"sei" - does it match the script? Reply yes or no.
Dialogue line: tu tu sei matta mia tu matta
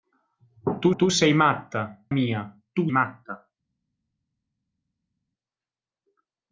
yes